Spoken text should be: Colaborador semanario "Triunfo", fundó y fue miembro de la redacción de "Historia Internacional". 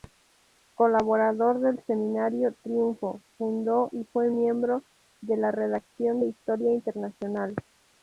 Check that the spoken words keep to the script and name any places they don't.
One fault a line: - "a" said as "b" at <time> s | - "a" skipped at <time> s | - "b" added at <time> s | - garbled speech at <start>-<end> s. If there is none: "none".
- "del" added at 1.6 s